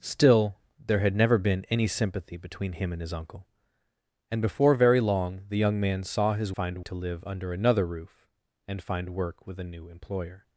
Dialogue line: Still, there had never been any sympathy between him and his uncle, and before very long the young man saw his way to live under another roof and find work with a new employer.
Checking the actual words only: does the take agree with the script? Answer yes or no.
no